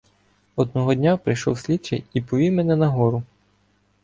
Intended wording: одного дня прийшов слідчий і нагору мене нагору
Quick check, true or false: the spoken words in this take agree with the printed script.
false